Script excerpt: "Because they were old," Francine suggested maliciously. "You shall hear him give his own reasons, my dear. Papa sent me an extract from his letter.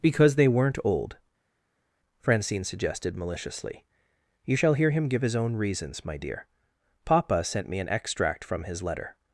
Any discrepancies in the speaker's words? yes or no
yes